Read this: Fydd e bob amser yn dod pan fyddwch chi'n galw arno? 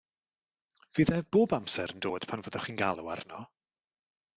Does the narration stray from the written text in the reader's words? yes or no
no